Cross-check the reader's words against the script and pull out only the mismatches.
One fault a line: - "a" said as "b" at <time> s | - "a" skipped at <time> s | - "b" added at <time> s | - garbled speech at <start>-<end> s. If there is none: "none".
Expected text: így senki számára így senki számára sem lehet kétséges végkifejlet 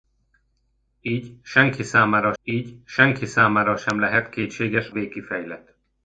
none